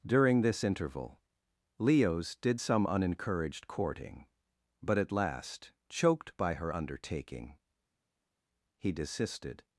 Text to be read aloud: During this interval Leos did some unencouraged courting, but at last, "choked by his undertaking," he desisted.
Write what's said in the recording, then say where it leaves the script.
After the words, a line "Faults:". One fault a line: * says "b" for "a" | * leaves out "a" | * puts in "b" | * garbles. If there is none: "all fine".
During this interval Leos did some unencouraged courting, but at last, "choked by her undertaking," he desisted.
Faults:
* says "her" for "his"